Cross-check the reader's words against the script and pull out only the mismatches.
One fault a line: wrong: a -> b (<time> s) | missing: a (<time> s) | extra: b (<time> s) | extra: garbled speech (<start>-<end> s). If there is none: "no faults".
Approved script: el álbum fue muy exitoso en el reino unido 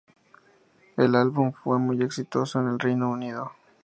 no faults